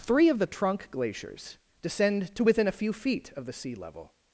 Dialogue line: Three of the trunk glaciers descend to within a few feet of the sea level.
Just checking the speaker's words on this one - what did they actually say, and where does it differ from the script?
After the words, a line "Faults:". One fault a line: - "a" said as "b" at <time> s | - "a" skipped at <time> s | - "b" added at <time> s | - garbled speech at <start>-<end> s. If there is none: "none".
Three of the trunk glaciers descend to within a few feet of the sea level.
Faults:
none